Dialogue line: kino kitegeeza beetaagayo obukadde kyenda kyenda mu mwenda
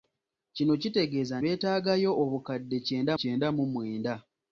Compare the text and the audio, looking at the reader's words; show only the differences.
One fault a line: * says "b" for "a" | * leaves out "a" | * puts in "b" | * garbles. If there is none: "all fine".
all fine